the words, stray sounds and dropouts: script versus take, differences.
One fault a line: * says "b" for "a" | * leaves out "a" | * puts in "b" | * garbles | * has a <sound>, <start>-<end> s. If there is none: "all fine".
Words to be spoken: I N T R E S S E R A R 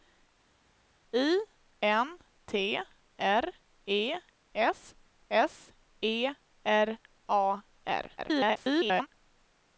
* garbles